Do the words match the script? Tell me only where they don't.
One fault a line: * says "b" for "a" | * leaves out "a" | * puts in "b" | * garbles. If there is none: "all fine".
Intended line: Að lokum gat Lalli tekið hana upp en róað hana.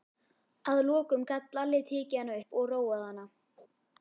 * says "og" for "en"